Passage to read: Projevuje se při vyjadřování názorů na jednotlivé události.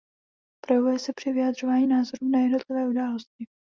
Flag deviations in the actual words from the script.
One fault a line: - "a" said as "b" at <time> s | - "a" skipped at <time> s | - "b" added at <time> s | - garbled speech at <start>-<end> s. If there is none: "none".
none